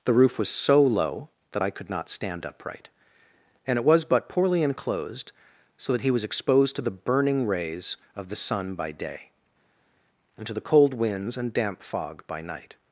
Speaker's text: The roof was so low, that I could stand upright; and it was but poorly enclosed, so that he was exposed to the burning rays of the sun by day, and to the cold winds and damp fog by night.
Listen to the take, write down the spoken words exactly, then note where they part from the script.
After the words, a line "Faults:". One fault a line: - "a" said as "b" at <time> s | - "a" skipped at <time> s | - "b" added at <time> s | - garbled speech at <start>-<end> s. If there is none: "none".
The roof was so low, that I could not stand upright; and it was but poorly enclosed, so that he was exposed to the burning rays of the sun by day, and to the cold winds and damp fog by night.
Faults:
- "not" added at 1.9 s